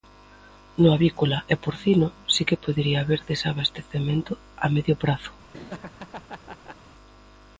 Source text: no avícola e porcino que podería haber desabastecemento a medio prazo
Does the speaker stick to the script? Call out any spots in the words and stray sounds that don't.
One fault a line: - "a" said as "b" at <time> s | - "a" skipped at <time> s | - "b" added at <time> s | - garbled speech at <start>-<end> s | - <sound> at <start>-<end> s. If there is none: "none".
- "si" added at 2.3 s
- laugh at 5.5-6.8 s